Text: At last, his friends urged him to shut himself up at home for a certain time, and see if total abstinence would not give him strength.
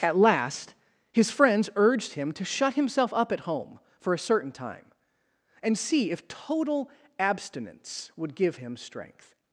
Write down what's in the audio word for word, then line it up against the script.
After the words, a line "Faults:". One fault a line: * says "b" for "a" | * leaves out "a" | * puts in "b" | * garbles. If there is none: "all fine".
At last, his friends urged him to shut himself up at home for a certain time, and see if total abstinence would give him strength.
Faults:
* leaves out "not"